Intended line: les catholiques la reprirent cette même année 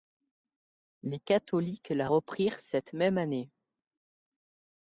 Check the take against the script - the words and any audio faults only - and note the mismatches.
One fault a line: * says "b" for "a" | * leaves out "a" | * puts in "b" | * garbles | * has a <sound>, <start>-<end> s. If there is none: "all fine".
all fine